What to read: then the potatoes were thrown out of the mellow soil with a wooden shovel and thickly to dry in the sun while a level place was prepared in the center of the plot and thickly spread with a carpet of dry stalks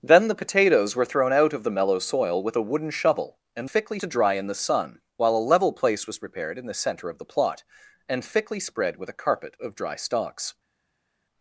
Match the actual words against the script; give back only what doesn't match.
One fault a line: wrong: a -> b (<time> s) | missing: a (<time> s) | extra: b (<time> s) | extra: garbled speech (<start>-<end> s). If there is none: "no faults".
no faults